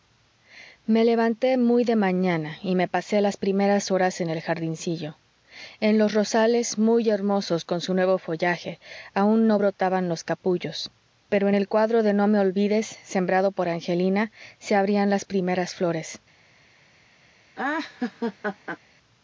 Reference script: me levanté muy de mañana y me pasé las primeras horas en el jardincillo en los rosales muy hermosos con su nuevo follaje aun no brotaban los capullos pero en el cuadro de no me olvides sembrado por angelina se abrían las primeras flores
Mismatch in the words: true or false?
false